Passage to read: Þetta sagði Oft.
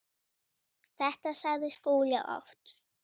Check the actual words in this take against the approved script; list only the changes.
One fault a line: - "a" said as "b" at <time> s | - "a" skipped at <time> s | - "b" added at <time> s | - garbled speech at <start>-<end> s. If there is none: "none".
- "Skúli" added at 1.8 s